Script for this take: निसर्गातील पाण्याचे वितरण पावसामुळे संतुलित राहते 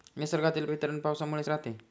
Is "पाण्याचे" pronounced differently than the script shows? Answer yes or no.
yes